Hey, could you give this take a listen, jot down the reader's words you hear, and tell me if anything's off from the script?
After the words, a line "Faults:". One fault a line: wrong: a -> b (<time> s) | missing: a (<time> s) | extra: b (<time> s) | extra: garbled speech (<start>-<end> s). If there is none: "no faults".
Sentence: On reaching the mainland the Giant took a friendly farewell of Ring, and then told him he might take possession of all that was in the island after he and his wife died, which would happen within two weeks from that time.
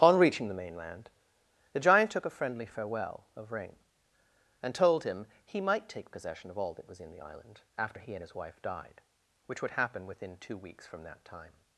On reaching the mainland the Giant took a friendly farewell of Ring, and told him he might take possession of all that was in the island after he and his wife died, which would happen within two weeks from that time.
Faults:
missing: then (4.7 s)